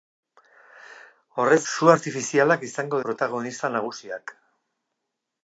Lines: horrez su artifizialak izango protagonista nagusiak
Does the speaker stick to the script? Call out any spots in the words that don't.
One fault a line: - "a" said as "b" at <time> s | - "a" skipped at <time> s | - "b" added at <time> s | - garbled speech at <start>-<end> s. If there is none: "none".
none